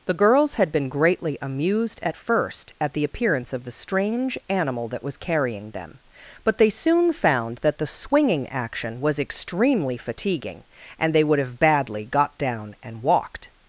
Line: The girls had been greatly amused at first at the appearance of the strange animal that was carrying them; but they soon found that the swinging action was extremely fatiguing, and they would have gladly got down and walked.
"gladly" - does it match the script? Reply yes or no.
no